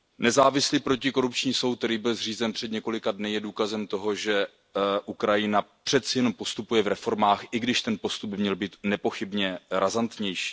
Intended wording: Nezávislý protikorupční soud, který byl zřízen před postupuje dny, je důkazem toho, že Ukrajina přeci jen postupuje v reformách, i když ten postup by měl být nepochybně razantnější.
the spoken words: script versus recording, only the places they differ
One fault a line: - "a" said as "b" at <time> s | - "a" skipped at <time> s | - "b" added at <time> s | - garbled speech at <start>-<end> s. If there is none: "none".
- "postupuje" said as "několika" at 2.7 s